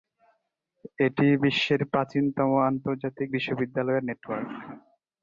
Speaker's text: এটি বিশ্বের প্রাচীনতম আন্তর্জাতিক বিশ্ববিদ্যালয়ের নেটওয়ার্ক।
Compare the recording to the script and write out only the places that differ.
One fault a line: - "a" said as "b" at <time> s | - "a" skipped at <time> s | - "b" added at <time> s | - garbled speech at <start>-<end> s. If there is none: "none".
none